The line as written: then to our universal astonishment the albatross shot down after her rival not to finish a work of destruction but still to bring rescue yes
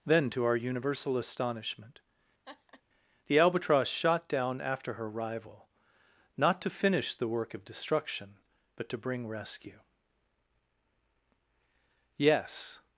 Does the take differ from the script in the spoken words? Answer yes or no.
yes